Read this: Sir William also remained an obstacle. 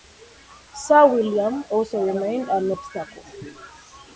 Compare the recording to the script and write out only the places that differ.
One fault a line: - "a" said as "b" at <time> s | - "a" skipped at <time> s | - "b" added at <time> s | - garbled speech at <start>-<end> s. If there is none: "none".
none